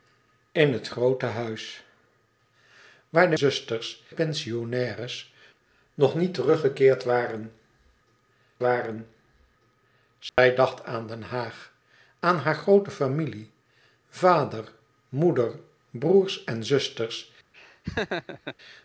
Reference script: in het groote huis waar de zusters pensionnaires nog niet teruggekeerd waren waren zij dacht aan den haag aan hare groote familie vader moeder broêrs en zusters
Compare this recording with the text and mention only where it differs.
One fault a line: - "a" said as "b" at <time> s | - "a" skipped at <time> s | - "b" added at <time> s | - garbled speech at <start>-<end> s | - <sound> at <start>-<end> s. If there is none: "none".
- dropout at 10.3-10.4 s
- laugh at 17.5-18.6 s